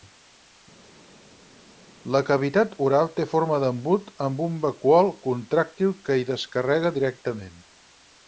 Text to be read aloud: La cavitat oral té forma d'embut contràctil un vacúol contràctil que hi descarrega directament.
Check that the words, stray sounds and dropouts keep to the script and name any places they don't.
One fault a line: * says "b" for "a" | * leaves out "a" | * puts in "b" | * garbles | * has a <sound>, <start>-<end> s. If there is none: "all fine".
* says "amb" for "contràctil"